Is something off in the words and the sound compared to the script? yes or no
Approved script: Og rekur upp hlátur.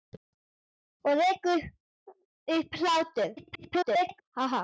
yes